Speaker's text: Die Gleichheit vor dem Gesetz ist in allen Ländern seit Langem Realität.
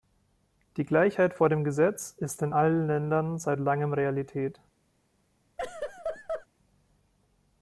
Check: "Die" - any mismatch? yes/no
no